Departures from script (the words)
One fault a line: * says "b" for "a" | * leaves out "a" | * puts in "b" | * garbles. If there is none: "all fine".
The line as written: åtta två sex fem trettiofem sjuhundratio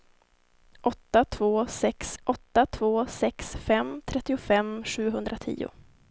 * puts in "åtta två sex"